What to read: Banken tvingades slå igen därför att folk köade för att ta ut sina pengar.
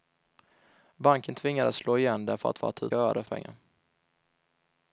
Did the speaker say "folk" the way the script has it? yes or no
no